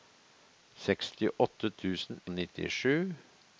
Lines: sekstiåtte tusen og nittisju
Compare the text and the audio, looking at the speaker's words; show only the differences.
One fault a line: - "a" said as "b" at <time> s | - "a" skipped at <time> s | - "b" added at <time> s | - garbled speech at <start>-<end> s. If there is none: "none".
none